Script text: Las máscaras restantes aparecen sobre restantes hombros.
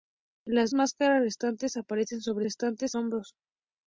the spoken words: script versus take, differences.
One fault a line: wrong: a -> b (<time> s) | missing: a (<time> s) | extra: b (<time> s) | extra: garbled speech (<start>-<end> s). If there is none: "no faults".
no faults